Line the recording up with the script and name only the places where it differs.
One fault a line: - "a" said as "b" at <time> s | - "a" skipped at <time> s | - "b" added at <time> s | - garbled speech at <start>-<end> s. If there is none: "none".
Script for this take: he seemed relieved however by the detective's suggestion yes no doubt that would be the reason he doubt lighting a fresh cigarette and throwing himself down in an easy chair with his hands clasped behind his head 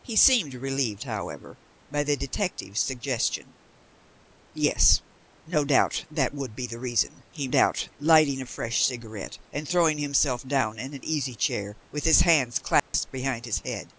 none